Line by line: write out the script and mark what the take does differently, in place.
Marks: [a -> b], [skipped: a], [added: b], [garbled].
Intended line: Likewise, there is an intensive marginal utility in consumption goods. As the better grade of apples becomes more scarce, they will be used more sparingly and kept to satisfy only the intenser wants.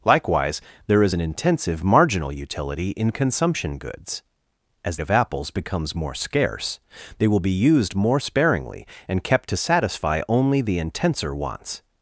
Likewise, there is an intensive marginal utility in consumption goods. As [skipped: the better grade] of apples becomes more scarce, they will be used more sparingly and kept to satisfy only the intenser wants.